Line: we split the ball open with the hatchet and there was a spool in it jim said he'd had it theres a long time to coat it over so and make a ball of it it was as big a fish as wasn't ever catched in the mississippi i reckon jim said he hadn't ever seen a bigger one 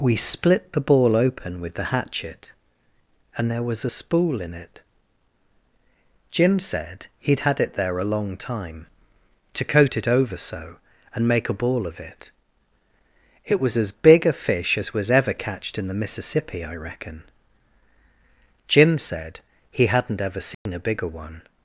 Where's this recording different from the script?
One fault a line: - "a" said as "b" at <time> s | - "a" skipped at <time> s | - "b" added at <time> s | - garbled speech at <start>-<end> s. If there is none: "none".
- "theres" said as "there" at 7.7 s
- "wasn't" said as "was" at 14.9 s